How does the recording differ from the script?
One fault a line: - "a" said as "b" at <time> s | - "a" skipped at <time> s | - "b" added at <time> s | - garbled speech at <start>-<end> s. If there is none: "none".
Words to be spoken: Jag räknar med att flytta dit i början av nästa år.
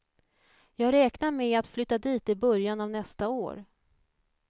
none